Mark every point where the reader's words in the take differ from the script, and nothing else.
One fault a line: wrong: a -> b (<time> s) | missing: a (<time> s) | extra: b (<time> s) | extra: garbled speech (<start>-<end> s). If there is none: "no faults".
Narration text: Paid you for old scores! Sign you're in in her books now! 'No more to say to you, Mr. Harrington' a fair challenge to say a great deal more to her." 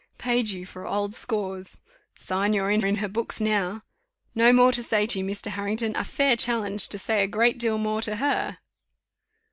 no faults